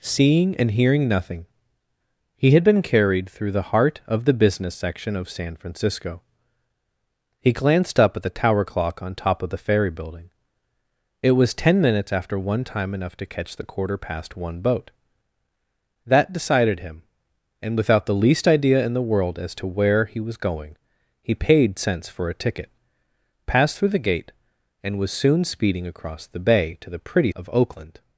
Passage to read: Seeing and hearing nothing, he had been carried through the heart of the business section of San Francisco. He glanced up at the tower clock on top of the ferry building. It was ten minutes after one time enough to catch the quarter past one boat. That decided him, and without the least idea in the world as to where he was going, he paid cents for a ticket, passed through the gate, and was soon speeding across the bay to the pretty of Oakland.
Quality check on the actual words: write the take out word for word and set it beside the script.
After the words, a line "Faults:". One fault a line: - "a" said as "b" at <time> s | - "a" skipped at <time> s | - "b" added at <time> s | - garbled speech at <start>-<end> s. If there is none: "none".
Seeing and hearing nothing, he had been carried through the heart of the business section of San Francisco. He glanced up at the tower clock on top of the ferry building. It was ten minutes after one time enough to catch the quarter past one boat. That decided him, and without the least idea in the world as to where he was going, he paid cents for a ticket, passed through the gate, and was soon speeding across the bay to the pretty of Oakland.
Faults:
none